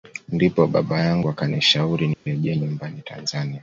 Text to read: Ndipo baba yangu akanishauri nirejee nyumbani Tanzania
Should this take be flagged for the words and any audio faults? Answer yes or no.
yes